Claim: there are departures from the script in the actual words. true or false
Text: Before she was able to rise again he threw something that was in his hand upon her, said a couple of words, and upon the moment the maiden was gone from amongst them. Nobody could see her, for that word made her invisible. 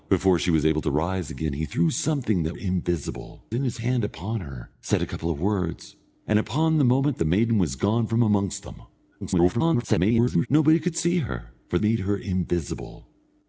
true